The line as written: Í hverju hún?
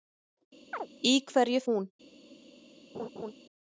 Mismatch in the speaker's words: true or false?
false